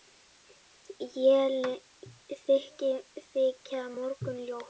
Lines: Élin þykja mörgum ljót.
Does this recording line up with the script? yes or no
yes